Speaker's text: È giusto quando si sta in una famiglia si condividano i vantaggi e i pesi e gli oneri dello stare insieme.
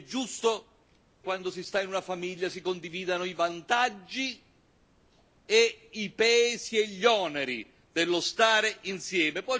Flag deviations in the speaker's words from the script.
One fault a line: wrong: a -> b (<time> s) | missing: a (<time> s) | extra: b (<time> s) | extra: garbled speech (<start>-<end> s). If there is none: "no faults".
no faults